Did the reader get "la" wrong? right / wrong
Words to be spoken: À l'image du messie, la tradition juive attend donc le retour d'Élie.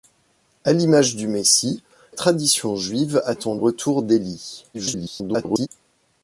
wrong